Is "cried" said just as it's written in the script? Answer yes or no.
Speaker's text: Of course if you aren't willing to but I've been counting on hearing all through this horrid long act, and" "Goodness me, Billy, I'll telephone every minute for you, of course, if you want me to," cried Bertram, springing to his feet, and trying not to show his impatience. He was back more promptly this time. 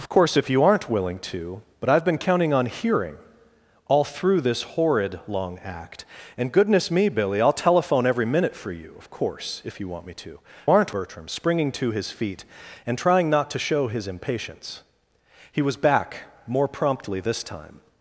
no